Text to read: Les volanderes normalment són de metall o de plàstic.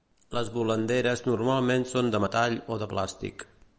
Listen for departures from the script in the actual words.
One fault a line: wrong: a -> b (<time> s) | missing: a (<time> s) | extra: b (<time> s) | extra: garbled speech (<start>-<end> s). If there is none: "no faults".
no faults